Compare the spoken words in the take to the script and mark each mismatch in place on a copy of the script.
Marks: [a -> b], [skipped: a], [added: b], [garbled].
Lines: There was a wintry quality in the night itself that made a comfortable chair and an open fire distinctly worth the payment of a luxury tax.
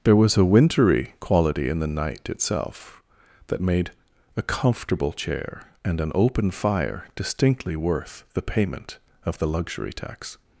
There was a wintry quality in the night itself that made a comfortable chair and an open fire distinctly worth the payment of [a -> the] luxury tax.